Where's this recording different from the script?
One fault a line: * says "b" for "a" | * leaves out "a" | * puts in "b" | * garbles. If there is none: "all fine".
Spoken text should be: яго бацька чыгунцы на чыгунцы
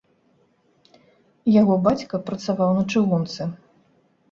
* says "працаваў" for "чыгунцы"